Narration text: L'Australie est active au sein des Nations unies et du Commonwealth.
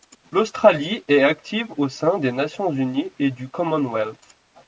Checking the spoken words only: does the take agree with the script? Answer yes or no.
yes